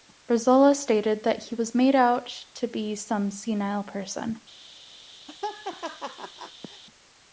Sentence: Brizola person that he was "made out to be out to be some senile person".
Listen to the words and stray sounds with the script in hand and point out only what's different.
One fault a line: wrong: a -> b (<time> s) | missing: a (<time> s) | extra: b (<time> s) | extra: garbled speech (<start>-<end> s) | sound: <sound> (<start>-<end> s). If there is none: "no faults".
wrong: person -> stated (0.8 s)
missing: out to be (2.9 s)
sound: laugh (5.3-6.8 s)